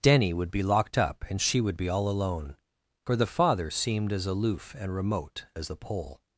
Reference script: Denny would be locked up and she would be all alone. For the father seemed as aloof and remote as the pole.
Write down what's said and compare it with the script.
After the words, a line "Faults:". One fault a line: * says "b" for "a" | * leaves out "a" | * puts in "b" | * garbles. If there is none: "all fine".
Denny would be locked up and she would be all alone. For the father seemed as aloof and remote as the pole.
Faults:
all fine